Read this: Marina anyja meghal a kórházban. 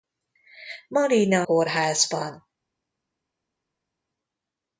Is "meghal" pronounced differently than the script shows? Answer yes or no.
yes